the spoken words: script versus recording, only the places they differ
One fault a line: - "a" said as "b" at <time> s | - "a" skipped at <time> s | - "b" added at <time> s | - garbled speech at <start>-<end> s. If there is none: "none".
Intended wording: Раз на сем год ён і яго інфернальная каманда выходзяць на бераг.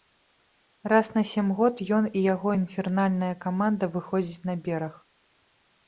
none